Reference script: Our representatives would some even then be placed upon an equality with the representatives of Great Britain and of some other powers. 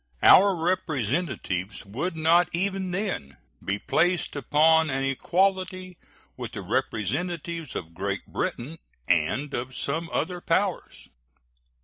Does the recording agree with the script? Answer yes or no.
no